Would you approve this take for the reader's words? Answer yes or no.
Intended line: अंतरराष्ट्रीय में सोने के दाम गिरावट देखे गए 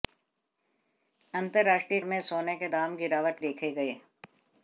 yes